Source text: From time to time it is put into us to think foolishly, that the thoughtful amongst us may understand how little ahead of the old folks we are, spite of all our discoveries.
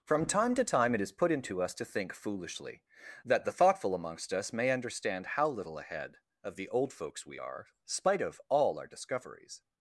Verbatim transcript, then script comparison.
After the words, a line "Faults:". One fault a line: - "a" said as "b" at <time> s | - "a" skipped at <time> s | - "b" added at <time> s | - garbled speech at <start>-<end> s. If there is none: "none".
From time to time it is put into us to think foolishly, that the thoughtful amongst us may understand how little ahead of the old folks we are, spite of all our discoveries.
Faults:
none